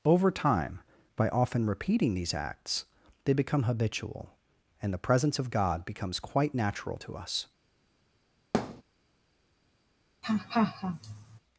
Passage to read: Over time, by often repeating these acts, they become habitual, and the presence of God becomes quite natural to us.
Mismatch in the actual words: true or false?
false